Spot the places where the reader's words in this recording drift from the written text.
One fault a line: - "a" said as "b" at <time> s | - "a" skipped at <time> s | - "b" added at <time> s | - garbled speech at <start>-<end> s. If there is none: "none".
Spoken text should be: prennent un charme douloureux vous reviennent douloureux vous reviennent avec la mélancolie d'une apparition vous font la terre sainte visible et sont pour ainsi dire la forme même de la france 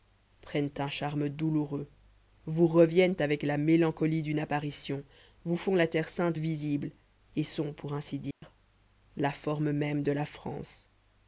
- "douloureux vous reviennent" skipped at 3.2 s